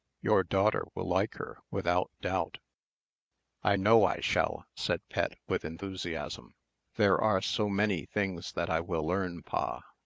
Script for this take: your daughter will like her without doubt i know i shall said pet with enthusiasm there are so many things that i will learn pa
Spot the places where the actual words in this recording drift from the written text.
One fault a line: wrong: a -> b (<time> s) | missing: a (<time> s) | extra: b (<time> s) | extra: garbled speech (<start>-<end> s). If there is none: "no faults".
no faults